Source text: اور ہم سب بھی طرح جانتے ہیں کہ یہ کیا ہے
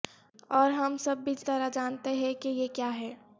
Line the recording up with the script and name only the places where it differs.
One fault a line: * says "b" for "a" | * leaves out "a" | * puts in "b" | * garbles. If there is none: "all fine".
all fine